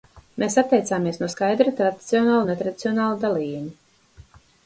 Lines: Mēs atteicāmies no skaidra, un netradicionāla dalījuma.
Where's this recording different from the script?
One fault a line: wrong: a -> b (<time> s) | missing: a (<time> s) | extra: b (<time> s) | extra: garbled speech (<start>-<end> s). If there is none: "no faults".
extra: tradicionāla (1.8 s)